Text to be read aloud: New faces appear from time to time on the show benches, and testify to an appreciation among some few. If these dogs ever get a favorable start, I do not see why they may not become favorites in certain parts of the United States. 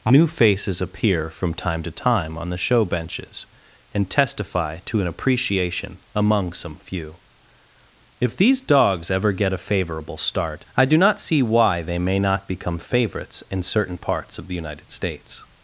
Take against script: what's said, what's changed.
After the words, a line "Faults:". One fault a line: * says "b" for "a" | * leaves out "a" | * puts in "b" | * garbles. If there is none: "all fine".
New faces appear from time to time on the show benches, and testify to an appreciation among some few. If these dogs ever get a favorable start, I do not see why they may not become favorites in certain parts of the United States.
Faults:
all fine